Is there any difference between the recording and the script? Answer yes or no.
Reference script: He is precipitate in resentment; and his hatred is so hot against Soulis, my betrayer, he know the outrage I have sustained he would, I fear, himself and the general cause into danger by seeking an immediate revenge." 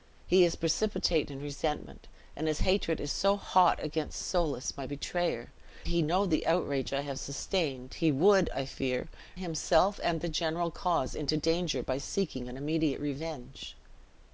no